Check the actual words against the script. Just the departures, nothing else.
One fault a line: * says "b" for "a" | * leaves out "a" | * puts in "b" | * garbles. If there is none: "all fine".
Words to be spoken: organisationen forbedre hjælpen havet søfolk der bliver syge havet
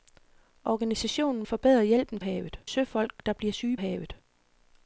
all fine